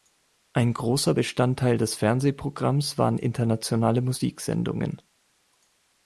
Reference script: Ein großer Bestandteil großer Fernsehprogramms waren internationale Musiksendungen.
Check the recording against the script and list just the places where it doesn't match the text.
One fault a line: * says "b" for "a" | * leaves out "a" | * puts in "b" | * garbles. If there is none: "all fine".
* says "des" for "großer"